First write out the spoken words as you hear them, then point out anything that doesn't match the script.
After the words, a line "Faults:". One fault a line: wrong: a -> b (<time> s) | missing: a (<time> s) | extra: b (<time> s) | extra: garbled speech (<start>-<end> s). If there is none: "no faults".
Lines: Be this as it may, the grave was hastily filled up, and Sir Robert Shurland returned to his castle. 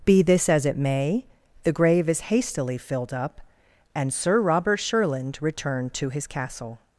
Be this as it may, the grave is hastily filled up, and Sir Robert Shurland returned to his castle.
Faults:
wrong: was -> is (2.1 s)